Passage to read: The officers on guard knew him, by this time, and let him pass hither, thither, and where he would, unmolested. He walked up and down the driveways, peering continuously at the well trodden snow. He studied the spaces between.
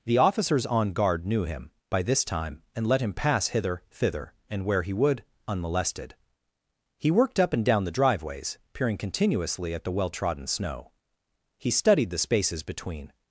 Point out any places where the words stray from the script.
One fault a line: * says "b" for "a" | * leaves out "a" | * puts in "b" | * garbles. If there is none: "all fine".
* says "worked" for "walked"